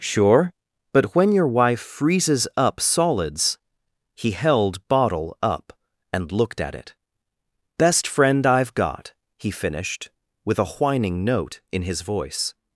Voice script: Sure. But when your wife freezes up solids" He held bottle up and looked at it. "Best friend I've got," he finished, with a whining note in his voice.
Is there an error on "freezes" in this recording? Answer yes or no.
no